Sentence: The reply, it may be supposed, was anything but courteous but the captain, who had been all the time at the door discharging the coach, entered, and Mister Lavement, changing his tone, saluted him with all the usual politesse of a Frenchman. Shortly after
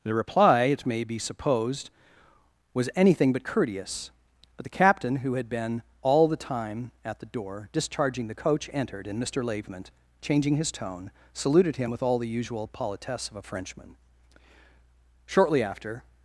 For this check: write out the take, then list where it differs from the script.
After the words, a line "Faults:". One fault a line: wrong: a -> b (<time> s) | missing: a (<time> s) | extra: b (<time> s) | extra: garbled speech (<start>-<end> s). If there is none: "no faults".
The reply, it may be supposed, was anything but courteous but the captain, who had been all the time at the door discharging the coach, entered, and Mister Lavement, changing his tone, saluted him with all the usual politesse of a Frenchman. Shortly after
Faults:
no faults